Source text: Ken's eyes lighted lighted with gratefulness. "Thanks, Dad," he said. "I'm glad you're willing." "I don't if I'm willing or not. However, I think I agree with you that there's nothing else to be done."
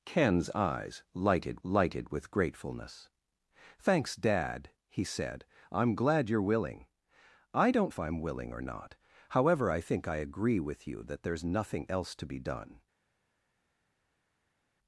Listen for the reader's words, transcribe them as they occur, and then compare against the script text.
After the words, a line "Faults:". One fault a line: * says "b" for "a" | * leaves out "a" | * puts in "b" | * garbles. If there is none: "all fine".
Ken's eyes lighted lighted with gratefulness. "Thanks, Dad," he said. "I'm glad you're willing." "I don't if I'm willing or not. However, I think I agree with you that there's nothing else to be done."
Faults:
all fine